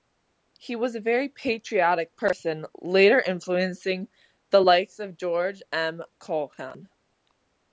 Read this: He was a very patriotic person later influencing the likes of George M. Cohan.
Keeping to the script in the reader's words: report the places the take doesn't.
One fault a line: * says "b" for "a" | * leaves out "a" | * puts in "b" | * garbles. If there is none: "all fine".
all fine